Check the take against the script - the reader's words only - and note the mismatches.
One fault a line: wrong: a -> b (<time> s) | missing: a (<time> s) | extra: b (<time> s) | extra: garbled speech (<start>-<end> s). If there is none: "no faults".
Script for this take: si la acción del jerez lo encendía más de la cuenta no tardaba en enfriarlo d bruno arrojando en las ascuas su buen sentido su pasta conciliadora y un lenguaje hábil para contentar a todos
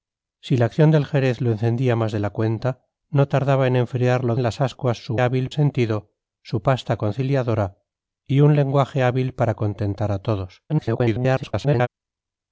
missing: d bruno arrojando (4.3 s)
wrong: buen -> hábil (5.2 s)
extra: garbled speech (10.7-11.9 s)